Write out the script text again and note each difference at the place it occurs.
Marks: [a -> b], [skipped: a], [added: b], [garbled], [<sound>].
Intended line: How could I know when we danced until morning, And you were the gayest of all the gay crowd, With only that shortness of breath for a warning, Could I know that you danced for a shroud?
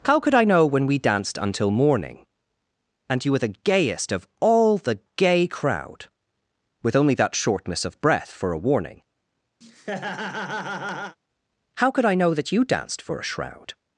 How could I know when we danced until morning, And you were the gayest of all the gay crowd, With only that shortness of breath for a warning, [laugh] [added: How] Could I know that you danced for a shroud?